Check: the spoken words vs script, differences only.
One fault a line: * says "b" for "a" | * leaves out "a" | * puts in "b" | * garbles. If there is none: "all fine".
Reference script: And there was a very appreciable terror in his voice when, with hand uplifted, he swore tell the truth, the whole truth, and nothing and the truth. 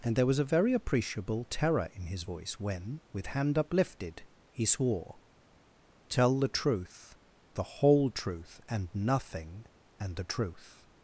all fine